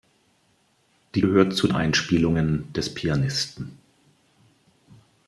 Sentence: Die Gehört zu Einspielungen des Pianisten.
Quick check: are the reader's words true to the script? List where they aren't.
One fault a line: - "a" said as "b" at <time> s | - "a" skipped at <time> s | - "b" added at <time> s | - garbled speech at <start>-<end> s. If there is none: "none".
none